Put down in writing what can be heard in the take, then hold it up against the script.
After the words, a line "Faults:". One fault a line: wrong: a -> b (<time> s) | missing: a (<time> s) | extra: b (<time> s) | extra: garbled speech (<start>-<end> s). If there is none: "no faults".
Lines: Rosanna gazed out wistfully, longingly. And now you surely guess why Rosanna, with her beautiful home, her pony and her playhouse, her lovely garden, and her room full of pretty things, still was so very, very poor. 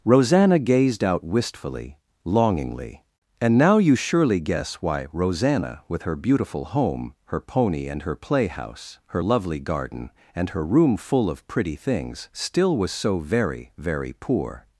Rosanna gazed out wistfully, longingly. And now you surely guess why Rosanna, with her beautiful home, her pony and her playhouse, her lovely garden, and her room full of pretty things, still was so very, very poor.
Faults:
no faults